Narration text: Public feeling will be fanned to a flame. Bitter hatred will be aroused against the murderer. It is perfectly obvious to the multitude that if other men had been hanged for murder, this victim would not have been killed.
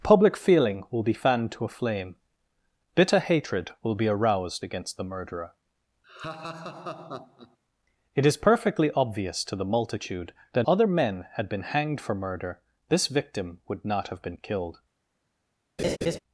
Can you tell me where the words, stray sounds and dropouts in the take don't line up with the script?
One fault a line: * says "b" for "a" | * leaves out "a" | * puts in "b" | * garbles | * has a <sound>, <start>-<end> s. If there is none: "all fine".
* has a laugh, 6.0-7.6 s
* leaves out "if"
* has a laugh, 15.8-16.2 s